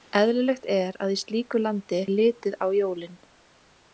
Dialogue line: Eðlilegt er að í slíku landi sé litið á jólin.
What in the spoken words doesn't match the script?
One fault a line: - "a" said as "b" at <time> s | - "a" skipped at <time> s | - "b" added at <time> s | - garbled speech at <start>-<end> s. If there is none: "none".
- "sé" skipped at 2.0 s